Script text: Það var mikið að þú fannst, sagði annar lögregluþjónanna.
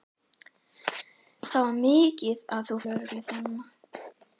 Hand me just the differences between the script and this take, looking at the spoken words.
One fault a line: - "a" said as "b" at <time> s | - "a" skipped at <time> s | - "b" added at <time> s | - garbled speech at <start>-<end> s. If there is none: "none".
- "fannst sagði annar" skipped at 2.8 s